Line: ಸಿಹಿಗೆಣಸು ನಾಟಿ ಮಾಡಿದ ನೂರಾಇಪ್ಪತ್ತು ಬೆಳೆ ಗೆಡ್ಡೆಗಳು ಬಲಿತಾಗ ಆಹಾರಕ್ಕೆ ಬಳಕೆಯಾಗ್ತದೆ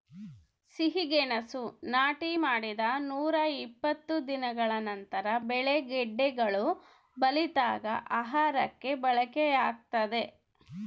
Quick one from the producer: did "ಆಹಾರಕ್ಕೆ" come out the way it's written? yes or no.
yes